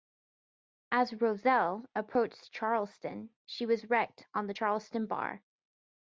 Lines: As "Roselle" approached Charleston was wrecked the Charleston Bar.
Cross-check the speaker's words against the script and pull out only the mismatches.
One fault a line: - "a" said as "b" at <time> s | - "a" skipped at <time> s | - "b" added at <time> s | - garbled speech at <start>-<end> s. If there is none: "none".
- "she" added at 3.5 s
- "on" added at 4.3 s